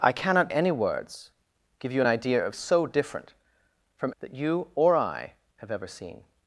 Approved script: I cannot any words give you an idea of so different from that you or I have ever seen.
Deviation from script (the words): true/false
false